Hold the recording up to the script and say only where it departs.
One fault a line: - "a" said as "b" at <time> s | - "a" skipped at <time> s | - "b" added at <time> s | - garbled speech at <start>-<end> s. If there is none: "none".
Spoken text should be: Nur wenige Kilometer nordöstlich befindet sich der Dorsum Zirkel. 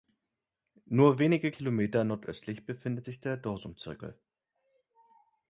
none